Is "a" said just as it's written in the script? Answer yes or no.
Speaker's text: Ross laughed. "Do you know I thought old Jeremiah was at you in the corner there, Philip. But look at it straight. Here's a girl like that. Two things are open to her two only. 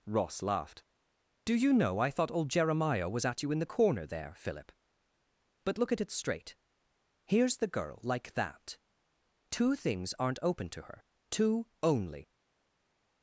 no